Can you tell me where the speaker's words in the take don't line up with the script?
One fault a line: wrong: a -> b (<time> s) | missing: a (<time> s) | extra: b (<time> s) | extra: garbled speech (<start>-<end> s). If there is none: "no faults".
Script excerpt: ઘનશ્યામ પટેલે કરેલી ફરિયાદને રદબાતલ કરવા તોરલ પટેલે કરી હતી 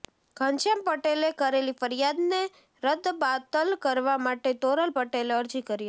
extra: માટે (4.2 s)
extra: અરજી (5.4 s)